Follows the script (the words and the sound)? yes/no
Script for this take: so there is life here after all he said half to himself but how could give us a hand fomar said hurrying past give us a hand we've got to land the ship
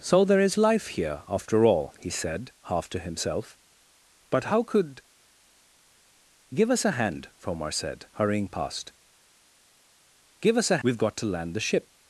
no